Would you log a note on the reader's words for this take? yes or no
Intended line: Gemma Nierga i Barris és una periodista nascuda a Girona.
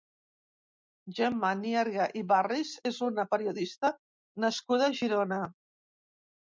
no